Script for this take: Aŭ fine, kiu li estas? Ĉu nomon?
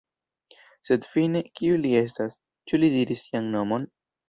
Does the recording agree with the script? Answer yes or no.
no